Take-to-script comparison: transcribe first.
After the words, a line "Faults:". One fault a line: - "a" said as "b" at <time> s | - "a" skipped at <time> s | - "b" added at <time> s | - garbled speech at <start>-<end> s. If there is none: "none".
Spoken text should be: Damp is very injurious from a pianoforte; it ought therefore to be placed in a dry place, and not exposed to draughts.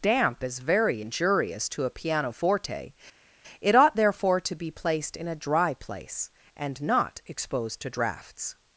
Damp is very injurious to a pianoforte; it ought therefore to be placed in a dry place, and not exposed to draughts.
Faults:
- "from" said as "to" at 1.7 s